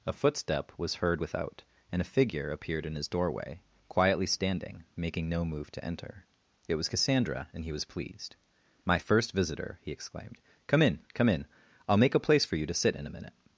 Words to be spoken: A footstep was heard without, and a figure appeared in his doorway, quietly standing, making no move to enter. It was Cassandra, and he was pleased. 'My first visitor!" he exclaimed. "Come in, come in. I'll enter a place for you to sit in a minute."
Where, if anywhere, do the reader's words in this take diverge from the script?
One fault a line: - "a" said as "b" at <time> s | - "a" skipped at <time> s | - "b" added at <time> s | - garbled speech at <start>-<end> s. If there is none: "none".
- "enter" said as "make" at 12.0 s